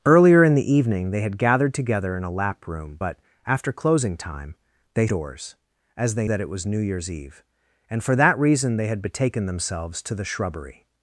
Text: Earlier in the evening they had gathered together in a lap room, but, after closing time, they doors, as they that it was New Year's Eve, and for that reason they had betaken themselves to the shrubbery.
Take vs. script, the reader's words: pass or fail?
pass